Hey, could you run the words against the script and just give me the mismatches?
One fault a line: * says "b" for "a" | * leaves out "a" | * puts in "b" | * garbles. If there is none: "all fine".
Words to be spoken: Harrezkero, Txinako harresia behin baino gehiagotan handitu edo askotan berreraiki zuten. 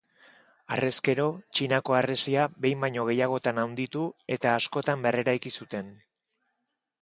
* says "eta" for "edo"